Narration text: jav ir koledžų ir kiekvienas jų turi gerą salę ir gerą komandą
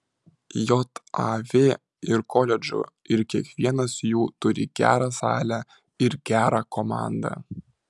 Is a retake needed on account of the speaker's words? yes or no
no